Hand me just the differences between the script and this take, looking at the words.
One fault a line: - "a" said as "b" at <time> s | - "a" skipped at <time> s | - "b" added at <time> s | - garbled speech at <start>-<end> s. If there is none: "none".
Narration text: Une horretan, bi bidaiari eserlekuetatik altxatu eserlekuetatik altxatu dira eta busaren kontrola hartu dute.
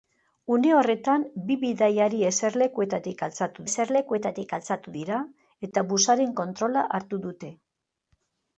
none